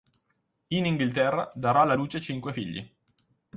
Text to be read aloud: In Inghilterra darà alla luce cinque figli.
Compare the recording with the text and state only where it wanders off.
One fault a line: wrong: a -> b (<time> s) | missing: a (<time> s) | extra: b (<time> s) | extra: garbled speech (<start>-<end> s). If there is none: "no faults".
no faults